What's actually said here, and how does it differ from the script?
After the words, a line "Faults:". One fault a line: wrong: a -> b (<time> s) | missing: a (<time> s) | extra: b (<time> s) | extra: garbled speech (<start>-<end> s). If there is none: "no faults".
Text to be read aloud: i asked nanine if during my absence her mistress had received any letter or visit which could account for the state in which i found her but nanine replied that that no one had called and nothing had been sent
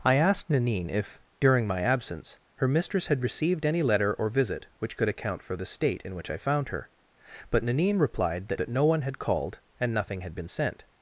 i asked nanine if during my absence her mistress had received any letter or visit which could account for the state in which i found her but nanine replied that that no one had called and nothing had been sent
Faults:
no faults